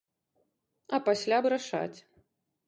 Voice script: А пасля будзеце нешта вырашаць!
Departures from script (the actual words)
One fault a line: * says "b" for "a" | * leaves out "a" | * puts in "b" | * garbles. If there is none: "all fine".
* leaves out "будзеце нешта"